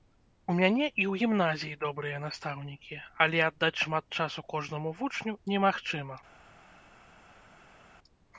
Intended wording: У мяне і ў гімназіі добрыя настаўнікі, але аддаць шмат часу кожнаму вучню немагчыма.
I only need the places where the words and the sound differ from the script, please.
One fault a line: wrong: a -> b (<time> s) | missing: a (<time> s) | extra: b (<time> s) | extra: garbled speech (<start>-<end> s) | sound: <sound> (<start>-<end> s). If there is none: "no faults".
no faults